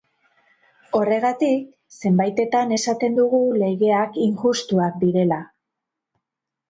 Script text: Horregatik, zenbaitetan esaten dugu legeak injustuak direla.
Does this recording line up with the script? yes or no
yes